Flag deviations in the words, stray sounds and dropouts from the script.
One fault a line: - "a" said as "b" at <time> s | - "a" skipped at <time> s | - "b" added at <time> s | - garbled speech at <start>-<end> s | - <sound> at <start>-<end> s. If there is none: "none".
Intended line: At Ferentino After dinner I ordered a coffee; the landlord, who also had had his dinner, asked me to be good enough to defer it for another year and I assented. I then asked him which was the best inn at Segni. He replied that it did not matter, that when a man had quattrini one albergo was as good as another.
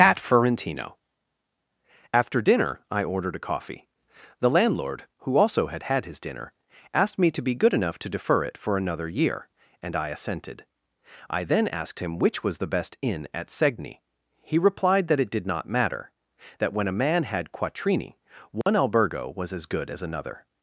- dropout at 18.6-18.7 s